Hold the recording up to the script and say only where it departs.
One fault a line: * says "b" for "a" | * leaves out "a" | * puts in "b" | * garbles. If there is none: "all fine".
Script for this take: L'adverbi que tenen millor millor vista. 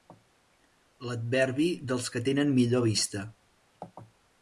* puts in "dels"
* leaves out "millor"